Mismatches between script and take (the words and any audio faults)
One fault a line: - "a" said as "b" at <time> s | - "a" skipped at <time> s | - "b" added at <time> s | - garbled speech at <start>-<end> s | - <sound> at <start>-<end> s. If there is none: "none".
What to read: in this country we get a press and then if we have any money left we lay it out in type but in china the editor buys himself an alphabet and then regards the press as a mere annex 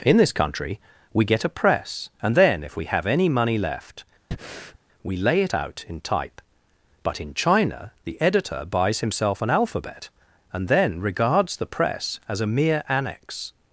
- breath at 4.3-4.8 s